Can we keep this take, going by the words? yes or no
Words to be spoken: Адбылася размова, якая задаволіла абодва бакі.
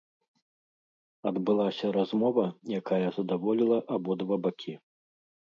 yes